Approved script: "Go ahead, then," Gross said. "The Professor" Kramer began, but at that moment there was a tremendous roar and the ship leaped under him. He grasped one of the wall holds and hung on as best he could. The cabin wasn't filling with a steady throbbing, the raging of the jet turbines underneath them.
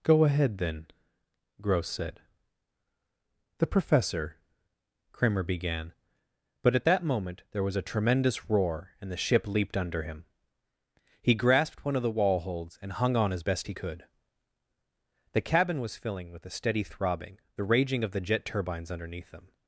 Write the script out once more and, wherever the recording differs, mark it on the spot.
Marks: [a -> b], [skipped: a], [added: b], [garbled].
"Go ahead, then," Gross said. "The Professor" Kramer began, but at that moment there was a tremendous roar and the ship leaped under him. He grasped one of the wall holds and hung on as best he could. The cabin [wasn't -> was] filling with a steady throbbing, the raging of the jet turbines underneath them.